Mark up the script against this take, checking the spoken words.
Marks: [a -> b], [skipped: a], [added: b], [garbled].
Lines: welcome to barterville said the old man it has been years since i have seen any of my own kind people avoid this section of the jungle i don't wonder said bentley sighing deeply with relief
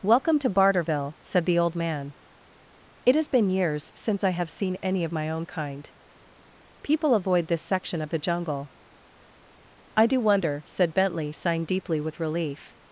welcome to barterville said the old man it has been years since i have seen any of my own kind people avoid this section of the jungle i [don't -> do] wonder said bentley sighing deeply with relief